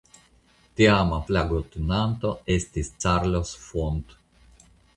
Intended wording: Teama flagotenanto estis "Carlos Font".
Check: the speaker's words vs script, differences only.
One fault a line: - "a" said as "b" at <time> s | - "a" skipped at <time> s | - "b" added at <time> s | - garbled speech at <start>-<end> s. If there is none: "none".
none